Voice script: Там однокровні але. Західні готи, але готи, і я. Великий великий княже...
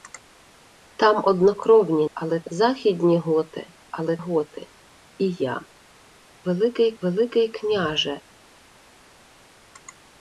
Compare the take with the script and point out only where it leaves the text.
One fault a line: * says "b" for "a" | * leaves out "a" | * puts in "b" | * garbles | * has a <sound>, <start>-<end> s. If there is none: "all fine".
all fine